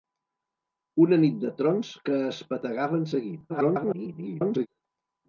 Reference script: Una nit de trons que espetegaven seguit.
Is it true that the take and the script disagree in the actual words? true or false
true